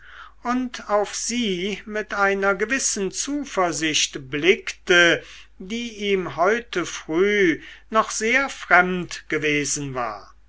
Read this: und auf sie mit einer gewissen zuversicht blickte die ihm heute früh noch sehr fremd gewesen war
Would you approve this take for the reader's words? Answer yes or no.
yes